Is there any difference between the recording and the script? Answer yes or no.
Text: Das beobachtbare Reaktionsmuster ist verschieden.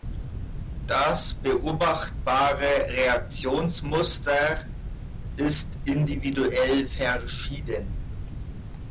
yes